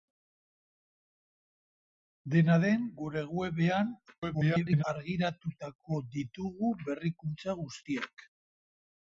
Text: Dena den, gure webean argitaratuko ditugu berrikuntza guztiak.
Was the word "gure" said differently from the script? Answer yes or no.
no